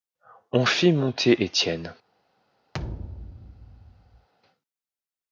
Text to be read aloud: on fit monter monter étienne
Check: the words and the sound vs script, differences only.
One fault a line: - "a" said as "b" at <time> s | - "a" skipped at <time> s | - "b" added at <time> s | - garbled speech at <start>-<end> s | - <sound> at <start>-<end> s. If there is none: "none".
- "monter" skipped at 1.4 s
- thud at 2.7-4.3 s